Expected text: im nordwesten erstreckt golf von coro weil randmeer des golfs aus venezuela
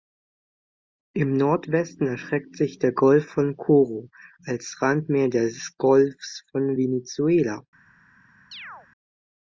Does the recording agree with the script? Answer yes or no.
no